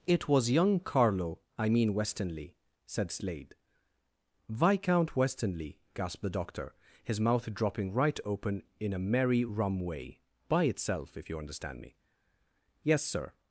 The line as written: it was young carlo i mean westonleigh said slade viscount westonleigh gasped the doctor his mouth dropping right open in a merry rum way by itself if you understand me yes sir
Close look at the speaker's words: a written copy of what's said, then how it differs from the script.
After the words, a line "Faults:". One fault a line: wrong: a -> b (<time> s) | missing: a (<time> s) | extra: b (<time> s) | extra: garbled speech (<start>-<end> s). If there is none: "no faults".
it was young carlo i mean westonleigh said slade viscount westonleigh gasped the doctor his mouth dropping right open in a merry rum way by itself if you understand me yes sir
Faults:
no faults